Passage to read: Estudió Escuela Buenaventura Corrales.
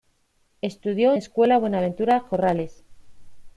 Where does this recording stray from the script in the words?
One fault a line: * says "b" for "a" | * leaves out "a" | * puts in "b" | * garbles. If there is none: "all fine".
all fine